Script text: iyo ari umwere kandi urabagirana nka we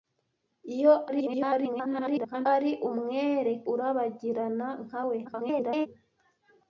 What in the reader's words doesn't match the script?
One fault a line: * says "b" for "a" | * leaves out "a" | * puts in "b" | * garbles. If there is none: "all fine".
* garbles
* leaves out "kandi"
* garbles